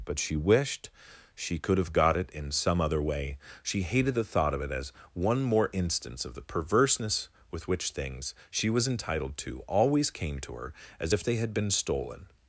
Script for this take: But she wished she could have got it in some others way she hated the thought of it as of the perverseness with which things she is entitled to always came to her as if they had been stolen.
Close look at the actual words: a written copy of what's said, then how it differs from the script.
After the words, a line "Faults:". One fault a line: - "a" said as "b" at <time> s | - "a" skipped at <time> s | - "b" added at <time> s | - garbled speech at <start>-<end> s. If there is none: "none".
But she wished she could have got it in some other way she hated the thought of it as one more instance of the perverseness with which things she was entitled to always came to her as if they had been stolen.
Faults:
- "others" said as "other" at 2.8 s
- "one more instance" added at 5.1 s
- "is" said as "was" at 8.7 s